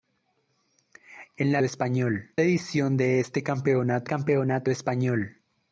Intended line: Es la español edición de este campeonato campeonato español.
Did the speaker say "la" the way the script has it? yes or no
yes